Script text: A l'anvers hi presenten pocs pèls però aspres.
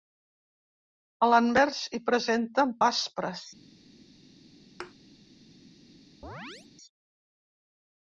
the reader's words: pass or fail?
fail